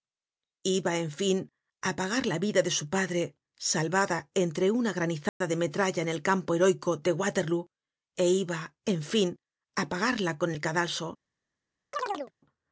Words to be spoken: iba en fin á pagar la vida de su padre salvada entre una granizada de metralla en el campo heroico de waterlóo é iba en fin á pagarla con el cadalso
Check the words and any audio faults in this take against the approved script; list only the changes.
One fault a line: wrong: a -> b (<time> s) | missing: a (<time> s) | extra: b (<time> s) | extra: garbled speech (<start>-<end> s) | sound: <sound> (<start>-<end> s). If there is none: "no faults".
sound: dropout (5.3-5.4 s)
sound: chirp (11.9-12.3 s)